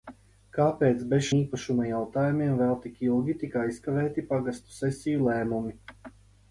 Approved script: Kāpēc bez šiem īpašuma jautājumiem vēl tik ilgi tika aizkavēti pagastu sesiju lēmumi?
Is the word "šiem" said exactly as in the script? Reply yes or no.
no